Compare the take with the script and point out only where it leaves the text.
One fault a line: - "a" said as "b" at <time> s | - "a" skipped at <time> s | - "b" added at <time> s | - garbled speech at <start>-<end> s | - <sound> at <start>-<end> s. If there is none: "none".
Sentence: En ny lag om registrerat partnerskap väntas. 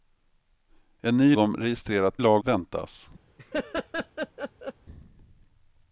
- "lag" skipped at 1.4 s
- "partnerskap" said as "lag" at 2.2 s
- laugh at 3.4-4.7 s